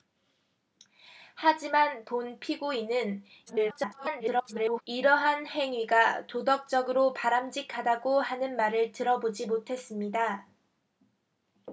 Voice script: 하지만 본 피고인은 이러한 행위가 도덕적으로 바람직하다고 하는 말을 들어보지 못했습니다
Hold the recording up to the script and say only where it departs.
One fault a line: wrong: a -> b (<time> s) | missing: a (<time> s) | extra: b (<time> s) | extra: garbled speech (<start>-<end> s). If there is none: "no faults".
extra: garbled speech (3.5-4.8 s)